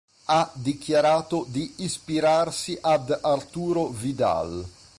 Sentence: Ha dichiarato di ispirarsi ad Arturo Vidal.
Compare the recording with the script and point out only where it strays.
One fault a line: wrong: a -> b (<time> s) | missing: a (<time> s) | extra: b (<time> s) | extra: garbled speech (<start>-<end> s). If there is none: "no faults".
no faults